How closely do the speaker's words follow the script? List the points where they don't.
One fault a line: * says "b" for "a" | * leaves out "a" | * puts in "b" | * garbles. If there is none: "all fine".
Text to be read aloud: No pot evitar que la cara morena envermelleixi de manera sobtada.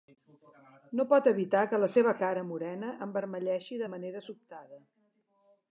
* puts in "seva"